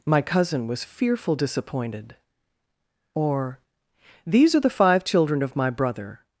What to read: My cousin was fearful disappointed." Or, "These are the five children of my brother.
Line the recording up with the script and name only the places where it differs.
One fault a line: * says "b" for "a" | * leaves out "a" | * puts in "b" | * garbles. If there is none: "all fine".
all fine